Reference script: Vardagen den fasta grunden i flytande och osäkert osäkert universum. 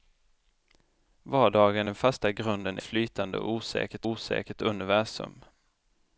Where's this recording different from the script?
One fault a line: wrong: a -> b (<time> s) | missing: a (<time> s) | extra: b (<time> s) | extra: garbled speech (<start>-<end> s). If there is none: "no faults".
no faults